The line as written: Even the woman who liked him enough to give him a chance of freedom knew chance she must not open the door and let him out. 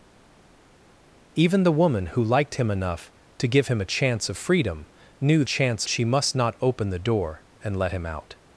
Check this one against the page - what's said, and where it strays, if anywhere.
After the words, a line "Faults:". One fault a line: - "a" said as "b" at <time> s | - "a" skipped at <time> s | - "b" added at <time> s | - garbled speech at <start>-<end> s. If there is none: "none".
Even the woman who liked him enough to give him a chance of freedom knew chance she must not open the door and let him out.
Faults:
none